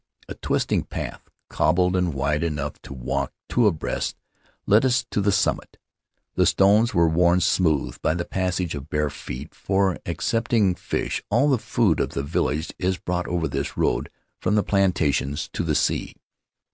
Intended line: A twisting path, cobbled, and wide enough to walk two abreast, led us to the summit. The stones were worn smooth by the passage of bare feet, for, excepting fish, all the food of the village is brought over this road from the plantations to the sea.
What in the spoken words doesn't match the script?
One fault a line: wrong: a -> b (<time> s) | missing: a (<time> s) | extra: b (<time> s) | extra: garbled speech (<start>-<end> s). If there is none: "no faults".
no faults